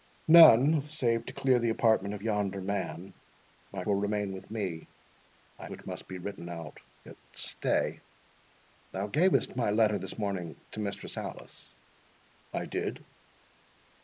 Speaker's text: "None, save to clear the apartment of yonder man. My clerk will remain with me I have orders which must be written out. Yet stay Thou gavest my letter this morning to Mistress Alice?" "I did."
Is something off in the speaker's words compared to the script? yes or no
yes